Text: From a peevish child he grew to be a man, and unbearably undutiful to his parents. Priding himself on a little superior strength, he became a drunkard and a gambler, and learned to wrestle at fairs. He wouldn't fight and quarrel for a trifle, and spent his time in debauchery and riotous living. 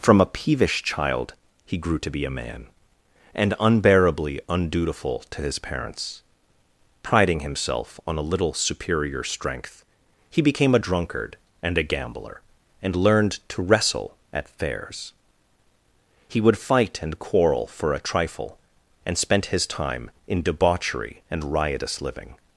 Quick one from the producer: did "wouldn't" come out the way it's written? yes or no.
no